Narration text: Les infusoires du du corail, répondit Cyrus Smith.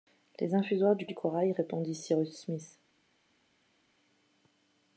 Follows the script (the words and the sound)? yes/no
yes